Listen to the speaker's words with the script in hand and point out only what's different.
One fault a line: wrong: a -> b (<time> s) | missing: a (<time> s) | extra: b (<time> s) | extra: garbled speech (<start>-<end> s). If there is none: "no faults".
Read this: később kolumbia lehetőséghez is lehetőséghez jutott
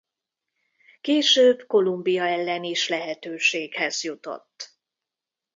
wrong: lehetőséghez -> ellen (2.3 s)